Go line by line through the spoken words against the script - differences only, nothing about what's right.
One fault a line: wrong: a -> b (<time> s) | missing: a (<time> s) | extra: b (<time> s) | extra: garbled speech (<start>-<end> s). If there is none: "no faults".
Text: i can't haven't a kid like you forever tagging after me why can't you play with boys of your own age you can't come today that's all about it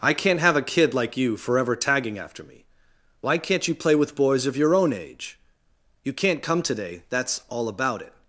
wrong: haven't -> have (0.4 s)